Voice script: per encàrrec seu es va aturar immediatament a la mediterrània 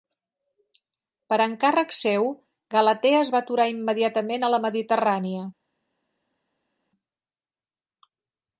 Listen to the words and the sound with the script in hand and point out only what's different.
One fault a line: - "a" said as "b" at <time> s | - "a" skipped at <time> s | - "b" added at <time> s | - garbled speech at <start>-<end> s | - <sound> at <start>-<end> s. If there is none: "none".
- "galatea" added at 2.8 s